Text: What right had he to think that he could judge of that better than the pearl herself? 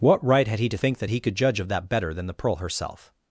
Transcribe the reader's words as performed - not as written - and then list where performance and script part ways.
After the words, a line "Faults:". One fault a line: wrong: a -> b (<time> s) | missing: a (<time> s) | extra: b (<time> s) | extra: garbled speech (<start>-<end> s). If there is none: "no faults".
What right had he to think that he could judge of that better than the pearl herself?
Faults:
no faults